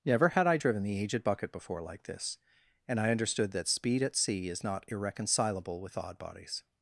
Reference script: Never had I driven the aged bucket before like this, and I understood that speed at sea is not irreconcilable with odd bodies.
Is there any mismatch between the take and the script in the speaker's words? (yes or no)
no